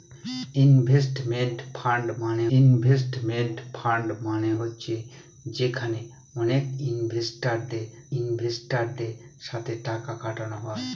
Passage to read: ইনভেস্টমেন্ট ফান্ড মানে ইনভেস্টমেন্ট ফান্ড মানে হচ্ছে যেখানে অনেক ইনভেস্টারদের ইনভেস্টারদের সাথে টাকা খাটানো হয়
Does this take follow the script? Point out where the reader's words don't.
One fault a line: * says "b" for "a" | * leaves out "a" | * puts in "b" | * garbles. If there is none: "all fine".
all fine